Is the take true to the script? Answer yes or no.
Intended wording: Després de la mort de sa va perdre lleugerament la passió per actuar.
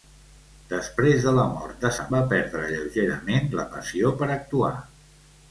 yes